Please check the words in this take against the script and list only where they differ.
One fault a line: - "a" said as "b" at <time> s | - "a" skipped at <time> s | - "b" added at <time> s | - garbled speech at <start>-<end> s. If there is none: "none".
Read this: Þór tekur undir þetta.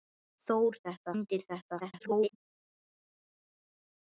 - "tekur" said as "þetta" at 0.8 s
- garbled speech at 1.8-2.4 s